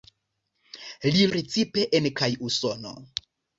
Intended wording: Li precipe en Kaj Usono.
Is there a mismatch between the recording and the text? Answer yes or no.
no